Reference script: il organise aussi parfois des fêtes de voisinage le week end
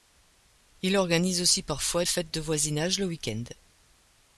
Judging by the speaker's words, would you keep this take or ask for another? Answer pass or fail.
fail